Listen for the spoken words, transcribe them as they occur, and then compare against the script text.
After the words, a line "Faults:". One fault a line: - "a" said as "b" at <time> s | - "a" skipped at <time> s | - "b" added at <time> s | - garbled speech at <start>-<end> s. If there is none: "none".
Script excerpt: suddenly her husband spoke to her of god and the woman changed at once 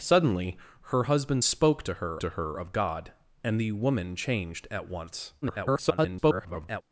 suddenly her husband spoke to her to her of god and the woman changed at once [garbled]
Faults:
- "to her" added at 2.2 s
- garbled speech at 5.4-6.8 s